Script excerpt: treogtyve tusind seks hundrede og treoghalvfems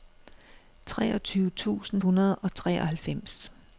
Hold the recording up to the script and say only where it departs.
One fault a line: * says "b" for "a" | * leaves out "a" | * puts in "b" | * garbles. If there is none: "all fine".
* leaves out "seks"